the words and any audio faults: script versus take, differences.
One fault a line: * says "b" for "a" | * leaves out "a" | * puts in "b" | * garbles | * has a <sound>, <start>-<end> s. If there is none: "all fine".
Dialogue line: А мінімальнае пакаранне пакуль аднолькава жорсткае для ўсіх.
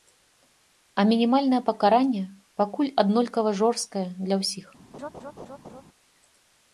* has a laugh, 4.9-5.8 s